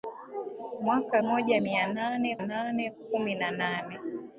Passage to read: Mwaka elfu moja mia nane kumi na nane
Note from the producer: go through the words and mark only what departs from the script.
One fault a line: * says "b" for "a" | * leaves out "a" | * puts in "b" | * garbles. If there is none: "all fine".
* leaves out "elfu"
* puts in "nane"